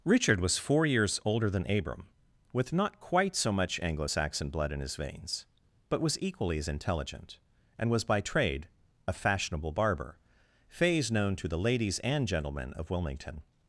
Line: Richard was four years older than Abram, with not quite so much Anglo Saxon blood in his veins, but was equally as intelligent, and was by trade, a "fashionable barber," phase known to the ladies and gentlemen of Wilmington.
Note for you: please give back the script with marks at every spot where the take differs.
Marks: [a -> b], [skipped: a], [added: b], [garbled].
Richard was four years older than Abram, with not quite so much Anglo Saxon blood in his veins, but was equally as intelligent, and was by trade, a "fashionable barber," phase known to the ladies and gentlemen of Wilmington.